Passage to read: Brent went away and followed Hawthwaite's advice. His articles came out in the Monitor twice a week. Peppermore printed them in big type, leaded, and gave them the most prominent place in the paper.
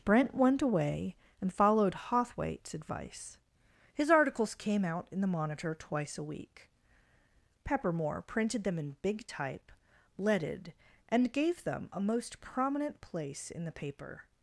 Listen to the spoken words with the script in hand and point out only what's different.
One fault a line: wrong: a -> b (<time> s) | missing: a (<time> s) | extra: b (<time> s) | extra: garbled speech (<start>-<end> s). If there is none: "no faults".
wrong: the -> a (11.9 s)